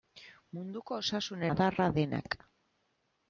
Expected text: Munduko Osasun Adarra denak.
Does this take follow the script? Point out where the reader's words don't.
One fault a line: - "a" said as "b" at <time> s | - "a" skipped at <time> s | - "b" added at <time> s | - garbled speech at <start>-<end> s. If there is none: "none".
none